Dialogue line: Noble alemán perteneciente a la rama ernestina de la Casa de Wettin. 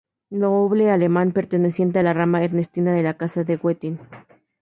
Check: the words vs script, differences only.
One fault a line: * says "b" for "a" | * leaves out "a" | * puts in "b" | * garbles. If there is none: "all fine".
all fine